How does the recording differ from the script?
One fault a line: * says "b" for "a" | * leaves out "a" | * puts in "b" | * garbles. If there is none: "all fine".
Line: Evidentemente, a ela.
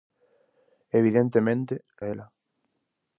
all fine